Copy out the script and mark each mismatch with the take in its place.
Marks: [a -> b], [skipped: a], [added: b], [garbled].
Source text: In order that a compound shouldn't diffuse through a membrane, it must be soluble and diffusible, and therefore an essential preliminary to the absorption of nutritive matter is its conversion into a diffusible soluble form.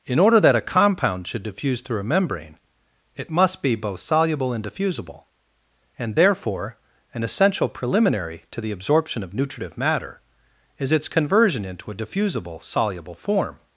In order that a compound [shouldn't -> should] diffuse through a membrane, it must be [added: both] soluble and diffusible, and therefore an essential preliminary to the absorption of nutritive matter is its conversion into a diffusible soluble form.